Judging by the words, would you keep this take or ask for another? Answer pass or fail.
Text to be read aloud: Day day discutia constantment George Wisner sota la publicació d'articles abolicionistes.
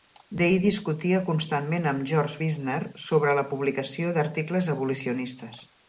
fail